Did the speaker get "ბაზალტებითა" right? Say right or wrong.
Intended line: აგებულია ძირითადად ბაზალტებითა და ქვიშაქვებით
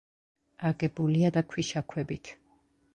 wrong